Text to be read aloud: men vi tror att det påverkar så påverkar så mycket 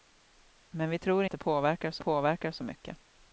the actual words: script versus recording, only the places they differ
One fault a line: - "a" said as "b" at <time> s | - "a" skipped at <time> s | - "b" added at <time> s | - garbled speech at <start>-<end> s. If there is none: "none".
none